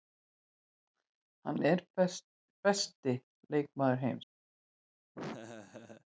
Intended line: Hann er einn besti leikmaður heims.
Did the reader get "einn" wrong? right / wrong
wrong